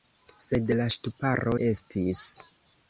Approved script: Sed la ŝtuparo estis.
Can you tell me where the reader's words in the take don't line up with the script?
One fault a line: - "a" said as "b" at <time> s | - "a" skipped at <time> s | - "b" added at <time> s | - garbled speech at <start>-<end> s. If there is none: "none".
none